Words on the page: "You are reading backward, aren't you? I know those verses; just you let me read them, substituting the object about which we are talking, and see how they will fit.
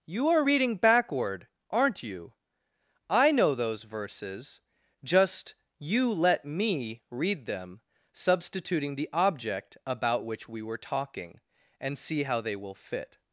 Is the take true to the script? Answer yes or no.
no